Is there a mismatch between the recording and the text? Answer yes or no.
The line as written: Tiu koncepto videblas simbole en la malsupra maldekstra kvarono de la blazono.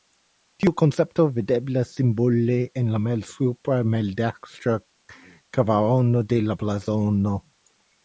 no